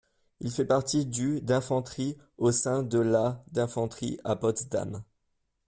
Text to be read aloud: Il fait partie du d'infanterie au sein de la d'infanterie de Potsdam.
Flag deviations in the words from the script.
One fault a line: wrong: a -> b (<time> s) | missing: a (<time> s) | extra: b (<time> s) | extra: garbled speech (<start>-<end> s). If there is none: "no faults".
wrong: de -> à (4.2 s)